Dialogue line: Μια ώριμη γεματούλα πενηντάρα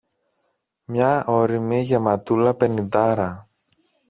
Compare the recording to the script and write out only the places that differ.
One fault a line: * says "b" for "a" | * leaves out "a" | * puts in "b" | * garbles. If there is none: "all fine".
all fine